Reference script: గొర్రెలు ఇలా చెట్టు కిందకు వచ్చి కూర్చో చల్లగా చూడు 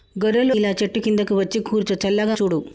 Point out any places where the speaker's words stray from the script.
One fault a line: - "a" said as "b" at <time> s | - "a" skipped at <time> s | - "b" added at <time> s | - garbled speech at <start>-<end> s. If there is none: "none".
none